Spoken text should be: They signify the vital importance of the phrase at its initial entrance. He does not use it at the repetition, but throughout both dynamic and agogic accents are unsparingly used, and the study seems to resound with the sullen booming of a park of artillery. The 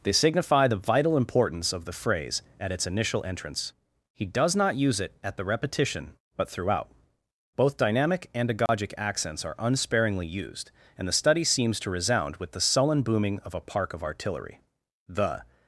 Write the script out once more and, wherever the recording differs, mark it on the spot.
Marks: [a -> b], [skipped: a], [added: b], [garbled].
They signify the vital importance of the phrase at its initial entrance. He does not use it at the repetition, but throughout both dynamic and agogic accents are unsparingly used, and the study seems to resound with the sullen booming of a park of artillery. The